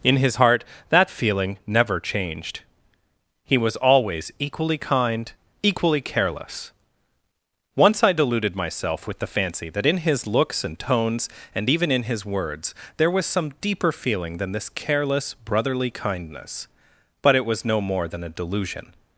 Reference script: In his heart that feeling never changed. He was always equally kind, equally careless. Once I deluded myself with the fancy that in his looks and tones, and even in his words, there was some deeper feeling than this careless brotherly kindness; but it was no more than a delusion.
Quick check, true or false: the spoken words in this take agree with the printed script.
true